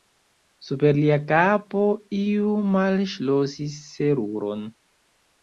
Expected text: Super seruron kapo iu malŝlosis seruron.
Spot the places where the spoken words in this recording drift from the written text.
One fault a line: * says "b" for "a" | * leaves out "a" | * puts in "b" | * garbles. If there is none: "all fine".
* says "lia" for "seruron"